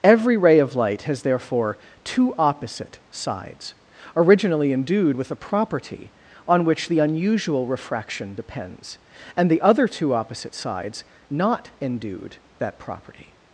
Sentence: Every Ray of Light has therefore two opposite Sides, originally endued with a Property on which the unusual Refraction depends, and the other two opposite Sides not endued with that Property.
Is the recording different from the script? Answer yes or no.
yes